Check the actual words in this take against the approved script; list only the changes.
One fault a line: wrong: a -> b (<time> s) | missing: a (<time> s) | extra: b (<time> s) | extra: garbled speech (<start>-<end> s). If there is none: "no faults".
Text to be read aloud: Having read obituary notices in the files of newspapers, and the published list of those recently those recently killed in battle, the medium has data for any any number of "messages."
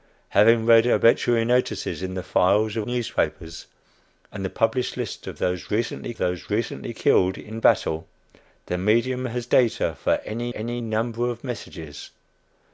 no faults